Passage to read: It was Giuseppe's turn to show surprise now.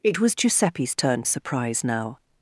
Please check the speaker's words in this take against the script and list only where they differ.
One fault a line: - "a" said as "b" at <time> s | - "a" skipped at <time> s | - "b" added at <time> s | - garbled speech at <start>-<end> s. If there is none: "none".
- "to show" skipped at 1.2 s